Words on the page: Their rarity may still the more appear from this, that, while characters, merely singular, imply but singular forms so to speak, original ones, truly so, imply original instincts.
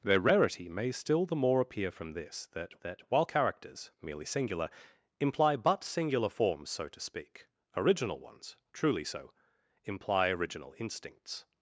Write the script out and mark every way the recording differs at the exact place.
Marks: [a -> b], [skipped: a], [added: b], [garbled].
Their rarity may still the more appear from this, that, [added: that] while characters, merely singular, imply but singular forms so to speak, original ones, truly so, imply original instincts.